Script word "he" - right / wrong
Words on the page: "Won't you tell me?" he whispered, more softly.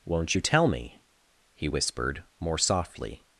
right